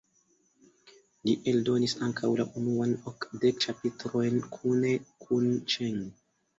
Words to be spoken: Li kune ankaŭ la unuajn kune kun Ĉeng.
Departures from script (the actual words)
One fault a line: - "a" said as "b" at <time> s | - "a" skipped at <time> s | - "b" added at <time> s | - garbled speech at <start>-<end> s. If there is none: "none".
- "kune" said as "eldonis" at 1.5 s
- "okdek ĉapitrojn" added at 3.1 s